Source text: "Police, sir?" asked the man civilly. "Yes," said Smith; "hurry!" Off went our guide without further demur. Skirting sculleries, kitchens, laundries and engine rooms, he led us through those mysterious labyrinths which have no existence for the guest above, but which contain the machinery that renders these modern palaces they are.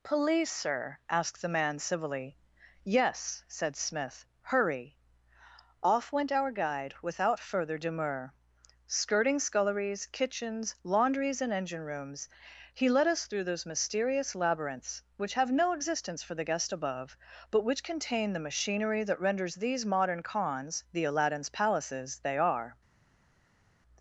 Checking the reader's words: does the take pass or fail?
fail